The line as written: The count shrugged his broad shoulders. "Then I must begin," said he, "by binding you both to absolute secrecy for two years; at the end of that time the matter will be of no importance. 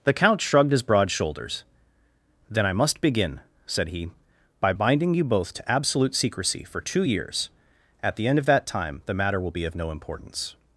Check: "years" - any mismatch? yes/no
no